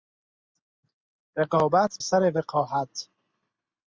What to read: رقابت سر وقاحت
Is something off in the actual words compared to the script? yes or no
no